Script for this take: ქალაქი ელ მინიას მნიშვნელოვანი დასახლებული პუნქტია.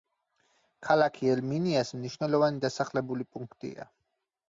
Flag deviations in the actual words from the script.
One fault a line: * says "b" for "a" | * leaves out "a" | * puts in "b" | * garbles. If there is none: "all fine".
all fine